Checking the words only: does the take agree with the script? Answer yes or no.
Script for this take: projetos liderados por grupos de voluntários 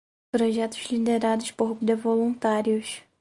no